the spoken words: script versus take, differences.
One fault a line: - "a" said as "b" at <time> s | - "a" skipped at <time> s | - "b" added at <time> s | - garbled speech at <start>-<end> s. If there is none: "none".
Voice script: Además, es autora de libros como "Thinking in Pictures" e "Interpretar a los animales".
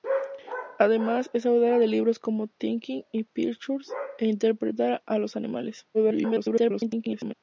- garbled speech at 5.9-7.3 s